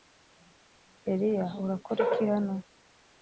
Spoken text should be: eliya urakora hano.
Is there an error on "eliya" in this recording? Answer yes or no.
no